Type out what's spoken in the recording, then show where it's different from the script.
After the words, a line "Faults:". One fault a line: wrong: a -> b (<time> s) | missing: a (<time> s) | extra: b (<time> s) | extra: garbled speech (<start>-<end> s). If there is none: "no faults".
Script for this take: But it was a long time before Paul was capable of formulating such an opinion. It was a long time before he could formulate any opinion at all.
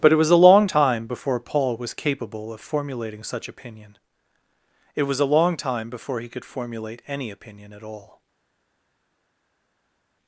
But it was a long time before Paul was capable of formulating such opinion. It was a long time before he could formulate any opinion at all.
Faults:
missing: an (3.5 s)